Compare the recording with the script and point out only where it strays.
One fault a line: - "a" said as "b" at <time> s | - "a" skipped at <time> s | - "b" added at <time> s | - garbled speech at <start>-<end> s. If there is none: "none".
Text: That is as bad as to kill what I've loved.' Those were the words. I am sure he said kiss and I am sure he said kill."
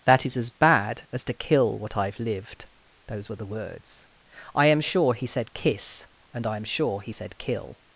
- "loved" said as "lived" at 2.2 s